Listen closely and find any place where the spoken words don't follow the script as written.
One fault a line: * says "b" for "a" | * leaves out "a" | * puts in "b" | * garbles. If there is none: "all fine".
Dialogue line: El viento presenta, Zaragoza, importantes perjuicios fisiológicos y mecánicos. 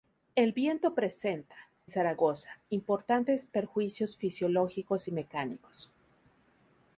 all fine